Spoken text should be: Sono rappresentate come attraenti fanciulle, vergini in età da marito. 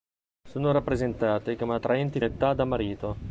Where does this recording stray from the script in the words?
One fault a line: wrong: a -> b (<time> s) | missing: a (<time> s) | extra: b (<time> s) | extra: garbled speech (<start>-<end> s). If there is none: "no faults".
missing: fanciulle vergini in (2.2 s)